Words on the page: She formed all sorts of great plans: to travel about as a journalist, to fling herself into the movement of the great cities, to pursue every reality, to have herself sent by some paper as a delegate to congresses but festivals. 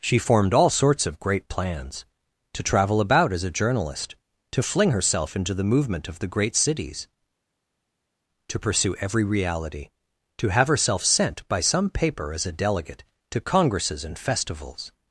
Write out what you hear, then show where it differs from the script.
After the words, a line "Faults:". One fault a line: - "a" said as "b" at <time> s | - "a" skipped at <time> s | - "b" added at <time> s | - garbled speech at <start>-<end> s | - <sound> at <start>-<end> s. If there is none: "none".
She formed all sorts of great plans: to travel about as a journalist, to fling herself into the movement of the great cities, to pursue every reality, to have herself sent by some paper as a delegate to congresses and festivals.
Faults:
- "but" said as "and" at 14.0 s